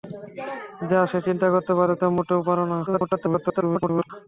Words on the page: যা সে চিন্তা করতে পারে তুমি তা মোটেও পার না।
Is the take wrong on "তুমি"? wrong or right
wrong